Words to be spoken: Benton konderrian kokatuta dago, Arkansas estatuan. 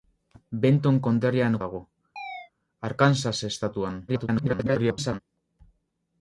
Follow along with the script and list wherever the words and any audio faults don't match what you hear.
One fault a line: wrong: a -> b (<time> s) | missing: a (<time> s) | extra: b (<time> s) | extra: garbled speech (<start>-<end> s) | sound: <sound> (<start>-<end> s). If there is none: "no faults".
missing: kokatuta (1.6 s)
sound: chirp (2.2-2.5 s)
extra: garbled speech (4.1-5.2 s)